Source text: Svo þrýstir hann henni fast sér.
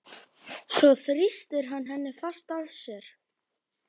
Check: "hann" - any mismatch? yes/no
no